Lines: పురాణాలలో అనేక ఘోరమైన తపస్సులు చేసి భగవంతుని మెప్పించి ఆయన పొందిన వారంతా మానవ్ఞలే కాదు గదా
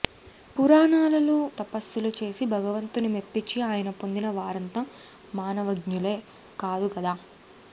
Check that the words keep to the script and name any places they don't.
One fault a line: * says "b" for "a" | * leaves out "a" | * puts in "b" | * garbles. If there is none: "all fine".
* leaves out "అనేక ఘోరమైన"